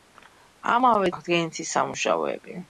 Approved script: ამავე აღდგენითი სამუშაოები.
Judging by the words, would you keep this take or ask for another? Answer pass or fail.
pass